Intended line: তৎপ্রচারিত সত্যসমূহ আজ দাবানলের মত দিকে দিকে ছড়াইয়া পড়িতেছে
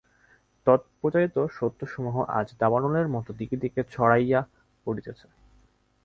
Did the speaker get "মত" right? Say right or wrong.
right